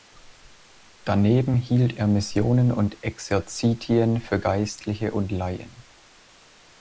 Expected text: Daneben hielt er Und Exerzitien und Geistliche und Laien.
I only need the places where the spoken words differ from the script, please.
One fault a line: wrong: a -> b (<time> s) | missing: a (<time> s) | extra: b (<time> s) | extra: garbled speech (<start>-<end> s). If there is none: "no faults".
extra: Missionen (2.1 s)
wrong: und -> für (4.2 s)